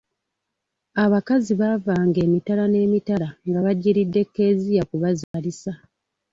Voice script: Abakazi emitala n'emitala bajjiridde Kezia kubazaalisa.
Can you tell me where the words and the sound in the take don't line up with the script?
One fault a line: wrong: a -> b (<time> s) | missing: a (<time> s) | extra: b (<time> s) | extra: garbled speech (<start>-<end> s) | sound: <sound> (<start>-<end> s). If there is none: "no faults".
extra: baavanga (1.6 s)
extra: nga (3.5 s)
sound: dropout (5.2-5.3 s)